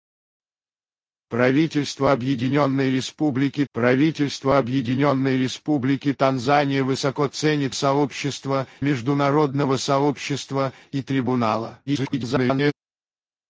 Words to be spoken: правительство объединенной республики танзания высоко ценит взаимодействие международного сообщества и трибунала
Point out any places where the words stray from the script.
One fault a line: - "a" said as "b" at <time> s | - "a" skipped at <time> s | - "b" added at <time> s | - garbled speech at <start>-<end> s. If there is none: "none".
- "правительство объединенной республики" added at 3.7 s
- "взаимодействие" said as "сообщества" at 7.7 s
- garbled speech at 11.9-12.7 s